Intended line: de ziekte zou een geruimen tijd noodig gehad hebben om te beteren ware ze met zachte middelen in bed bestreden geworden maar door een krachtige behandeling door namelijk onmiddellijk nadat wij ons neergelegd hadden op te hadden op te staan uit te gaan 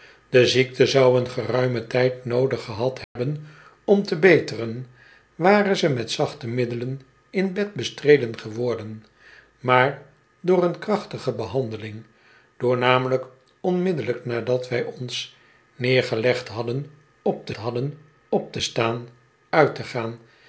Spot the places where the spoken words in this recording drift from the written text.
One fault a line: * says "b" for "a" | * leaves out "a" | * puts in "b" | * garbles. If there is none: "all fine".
all fine